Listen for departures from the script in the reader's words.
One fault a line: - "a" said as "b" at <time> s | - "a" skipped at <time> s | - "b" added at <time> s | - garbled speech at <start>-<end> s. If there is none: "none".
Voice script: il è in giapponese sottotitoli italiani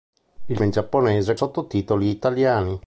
none